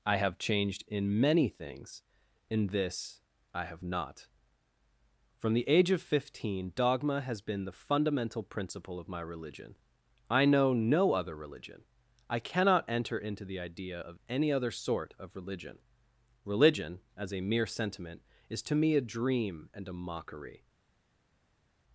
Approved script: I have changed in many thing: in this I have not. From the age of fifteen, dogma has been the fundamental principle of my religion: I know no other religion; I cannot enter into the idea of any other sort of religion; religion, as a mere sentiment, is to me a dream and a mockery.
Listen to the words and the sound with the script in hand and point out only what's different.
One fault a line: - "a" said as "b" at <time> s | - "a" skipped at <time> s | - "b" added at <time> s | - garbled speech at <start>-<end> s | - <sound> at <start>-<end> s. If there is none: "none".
- "thing" said as "things" at 1.5 s